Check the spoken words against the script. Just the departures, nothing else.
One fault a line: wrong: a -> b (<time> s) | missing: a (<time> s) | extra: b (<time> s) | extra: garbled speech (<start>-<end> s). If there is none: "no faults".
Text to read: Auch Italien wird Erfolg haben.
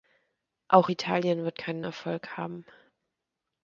extra: keinen (1.6 s)